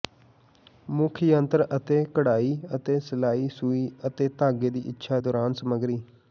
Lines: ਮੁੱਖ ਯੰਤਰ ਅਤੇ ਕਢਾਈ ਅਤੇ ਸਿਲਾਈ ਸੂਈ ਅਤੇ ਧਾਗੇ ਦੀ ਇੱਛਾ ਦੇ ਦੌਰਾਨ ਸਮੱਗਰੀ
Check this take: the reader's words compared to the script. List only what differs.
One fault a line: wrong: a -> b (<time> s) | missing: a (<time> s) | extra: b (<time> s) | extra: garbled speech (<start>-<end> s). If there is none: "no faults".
missing: ਦੇ (5.2 s)